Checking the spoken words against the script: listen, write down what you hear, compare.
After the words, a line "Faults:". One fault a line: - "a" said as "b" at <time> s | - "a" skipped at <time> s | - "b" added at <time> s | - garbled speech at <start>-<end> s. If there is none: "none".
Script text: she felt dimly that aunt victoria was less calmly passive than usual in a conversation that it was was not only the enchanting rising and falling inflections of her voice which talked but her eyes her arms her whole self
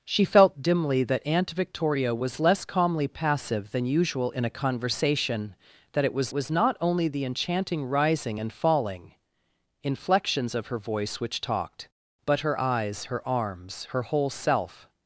she felt dimly that aunt victoria was less calmly passive than usual in a conversation that it was was not only the enchanting rising and falling inflections of her voice which talked but her eyes her arms her whole self
Faults:
none